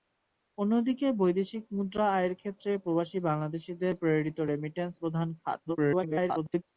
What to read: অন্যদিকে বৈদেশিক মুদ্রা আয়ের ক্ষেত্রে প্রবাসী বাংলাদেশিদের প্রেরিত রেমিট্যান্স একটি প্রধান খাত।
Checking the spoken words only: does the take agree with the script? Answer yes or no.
no